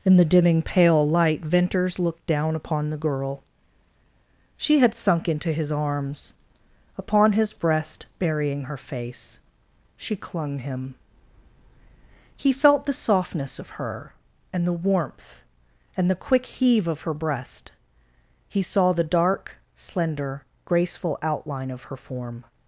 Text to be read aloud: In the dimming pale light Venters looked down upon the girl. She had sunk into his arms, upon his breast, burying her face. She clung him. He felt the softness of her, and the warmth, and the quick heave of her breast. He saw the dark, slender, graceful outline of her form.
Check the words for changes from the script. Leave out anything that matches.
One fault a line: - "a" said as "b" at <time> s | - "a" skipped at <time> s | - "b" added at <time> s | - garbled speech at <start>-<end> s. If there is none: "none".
none